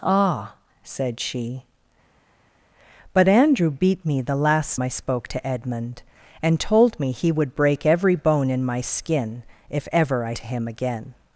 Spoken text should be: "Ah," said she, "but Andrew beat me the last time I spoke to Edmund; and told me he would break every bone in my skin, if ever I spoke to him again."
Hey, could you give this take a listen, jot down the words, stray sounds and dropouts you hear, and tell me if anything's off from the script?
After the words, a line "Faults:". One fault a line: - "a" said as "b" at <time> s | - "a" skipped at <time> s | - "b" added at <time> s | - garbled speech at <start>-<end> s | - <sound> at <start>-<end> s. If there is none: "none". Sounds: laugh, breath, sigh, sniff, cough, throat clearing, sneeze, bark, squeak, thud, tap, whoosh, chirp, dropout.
"Ah," said she, "but Andrew beat me the last I spoke to Edmund; and told me he would break every bone in my skin, if ever I to him again."
Faults:
- "time" skipped at 4.8 s
- "spoke" skipped at 10.3 s